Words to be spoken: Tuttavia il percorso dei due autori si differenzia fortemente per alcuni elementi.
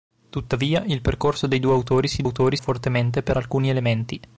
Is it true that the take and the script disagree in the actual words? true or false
true